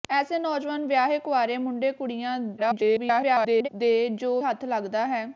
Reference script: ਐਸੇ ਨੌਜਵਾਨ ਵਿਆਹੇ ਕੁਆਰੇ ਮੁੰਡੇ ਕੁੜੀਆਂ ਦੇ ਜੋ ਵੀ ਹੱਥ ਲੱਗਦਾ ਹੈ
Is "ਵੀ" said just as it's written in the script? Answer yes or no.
no